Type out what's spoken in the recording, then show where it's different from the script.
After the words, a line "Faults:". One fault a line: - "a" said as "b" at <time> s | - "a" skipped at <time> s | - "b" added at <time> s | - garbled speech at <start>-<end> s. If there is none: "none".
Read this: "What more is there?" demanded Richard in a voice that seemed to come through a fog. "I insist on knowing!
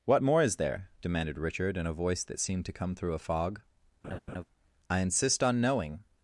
"What more is there?" demanded Richard in a voice that seemed to come through a fog. "I insist on knowing!
Faults:
none